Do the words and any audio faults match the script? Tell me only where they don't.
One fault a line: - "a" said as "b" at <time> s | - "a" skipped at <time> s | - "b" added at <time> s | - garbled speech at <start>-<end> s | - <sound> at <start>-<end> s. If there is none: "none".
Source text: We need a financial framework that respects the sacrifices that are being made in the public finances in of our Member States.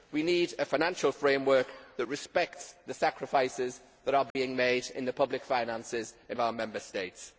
- dropout at 4.3-4.4 s